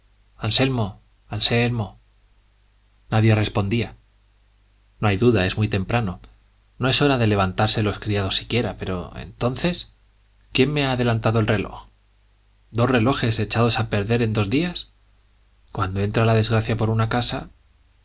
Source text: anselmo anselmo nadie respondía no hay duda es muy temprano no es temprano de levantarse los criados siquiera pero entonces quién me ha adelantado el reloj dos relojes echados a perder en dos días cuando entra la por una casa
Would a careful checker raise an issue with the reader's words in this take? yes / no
yes